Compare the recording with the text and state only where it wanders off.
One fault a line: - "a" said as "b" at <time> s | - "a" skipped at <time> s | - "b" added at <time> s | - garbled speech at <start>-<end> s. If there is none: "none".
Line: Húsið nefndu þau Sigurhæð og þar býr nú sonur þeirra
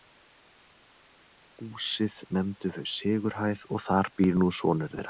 none